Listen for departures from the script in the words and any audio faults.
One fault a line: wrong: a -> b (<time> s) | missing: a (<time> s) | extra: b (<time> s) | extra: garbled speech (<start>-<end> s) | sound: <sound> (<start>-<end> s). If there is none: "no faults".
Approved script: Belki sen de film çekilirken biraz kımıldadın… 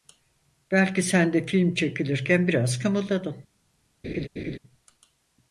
sound: laugh (4.0-4.6 s)